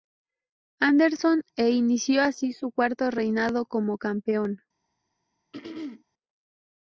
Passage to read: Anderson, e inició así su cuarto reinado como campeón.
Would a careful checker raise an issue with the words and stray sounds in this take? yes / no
yes